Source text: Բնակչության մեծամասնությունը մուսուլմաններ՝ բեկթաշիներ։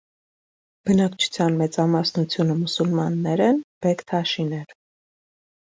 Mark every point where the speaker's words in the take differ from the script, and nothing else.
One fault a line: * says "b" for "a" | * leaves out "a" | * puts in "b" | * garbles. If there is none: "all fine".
* puts in "են"